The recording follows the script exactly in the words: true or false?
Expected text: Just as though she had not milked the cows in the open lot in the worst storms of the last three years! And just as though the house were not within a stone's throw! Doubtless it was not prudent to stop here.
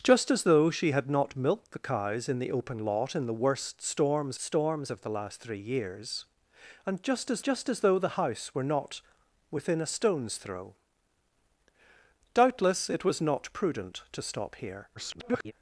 false